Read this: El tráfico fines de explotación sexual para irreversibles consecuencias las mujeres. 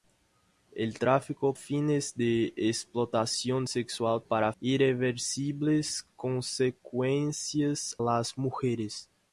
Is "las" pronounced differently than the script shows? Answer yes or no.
no